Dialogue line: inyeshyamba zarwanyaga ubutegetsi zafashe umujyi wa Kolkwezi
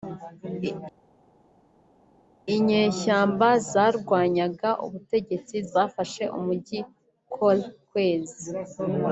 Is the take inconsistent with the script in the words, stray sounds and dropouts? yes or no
yes